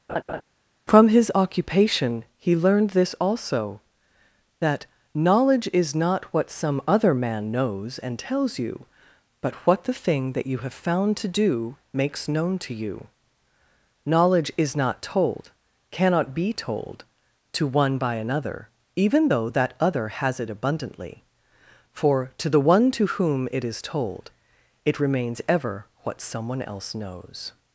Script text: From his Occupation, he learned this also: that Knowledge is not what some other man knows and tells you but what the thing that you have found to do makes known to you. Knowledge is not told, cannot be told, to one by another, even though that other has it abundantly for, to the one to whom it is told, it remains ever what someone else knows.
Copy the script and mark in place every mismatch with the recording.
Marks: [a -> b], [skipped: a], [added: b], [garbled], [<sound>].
[laugh] From his Occupation, he learned this also: that Knowledge is not what some other man knows and tells you but what the thing that you have found to do makes known to you. Knowledge is not told, cannot be told, to one by another, even though that other has it abundantly for, to the one to whom it is told, it remains ever what someone else knows.